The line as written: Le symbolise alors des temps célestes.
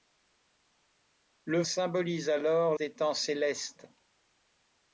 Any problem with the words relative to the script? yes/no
no